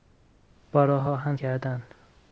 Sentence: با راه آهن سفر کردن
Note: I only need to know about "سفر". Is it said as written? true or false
false